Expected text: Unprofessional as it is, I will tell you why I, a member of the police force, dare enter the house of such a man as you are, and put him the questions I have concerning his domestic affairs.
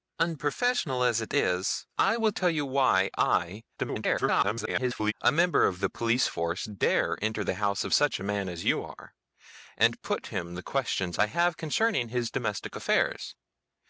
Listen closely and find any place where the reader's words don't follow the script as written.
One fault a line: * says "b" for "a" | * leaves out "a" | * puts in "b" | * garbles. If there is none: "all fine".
* garbles